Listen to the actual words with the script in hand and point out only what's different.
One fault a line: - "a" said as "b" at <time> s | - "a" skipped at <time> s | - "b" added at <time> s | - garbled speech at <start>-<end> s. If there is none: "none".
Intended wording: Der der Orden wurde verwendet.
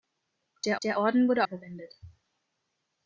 none